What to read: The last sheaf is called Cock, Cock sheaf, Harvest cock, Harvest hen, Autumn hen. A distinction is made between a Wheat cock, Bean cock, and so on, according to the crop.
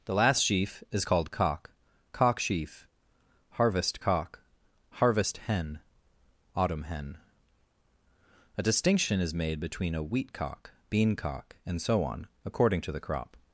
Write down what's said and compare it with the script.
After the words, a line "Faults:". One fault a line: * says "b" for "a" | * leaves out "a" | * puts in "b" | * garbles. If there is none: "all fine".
The last sheaf is called Cock, Cock sheaf, Harvest cock, Harvest hen, Autumn hen. A distinction is made between a Wheat cock, Bean cock, and so on, according to the crop.
Faults:
all fine